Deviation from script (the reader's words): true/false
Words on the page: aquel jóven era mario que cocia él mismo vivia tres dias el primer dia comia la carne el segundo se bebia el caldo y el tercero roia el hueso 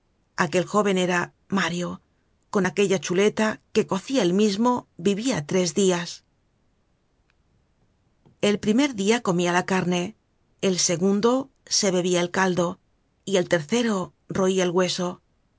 true